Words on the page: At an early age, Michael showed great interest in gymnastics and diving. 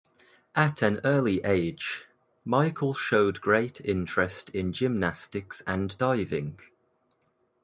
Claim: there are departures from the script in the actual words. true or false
false